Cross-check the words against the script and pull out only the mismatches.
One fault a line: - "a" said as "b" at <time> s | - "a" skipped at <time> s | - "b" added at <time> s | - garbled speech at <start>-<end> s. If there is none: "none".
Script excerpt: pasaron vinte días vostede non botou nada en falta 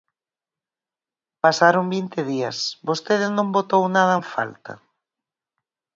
none